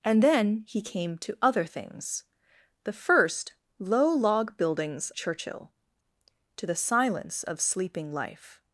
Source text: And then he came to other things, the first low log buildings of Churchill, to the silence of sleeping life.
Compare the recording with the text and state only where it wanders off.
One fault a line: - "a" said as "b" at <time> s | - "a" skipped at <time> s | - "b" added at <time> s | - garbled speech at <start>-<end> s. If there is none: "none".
- "of" skipped at 5.1 s